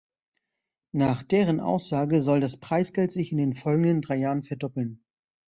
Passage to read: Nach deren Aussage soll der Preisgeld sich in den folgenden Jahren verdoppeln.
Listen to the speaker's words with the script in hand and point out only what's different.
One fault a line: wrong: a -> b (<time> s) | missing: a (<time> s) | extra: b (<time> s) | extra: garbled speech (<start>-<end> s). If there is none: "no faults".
wrong: der -> das (2.4 s)
extra: drei (4.0 s)